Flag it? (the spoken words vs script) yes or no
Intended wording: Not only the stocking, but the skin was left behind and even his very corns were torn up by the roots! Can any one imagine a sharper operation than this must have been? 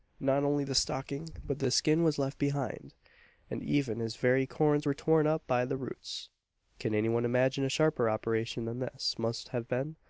no